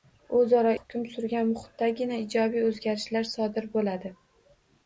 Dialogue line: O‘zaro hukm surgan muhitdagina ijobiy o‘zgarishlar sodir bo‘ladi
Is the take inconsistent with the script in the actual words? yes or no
no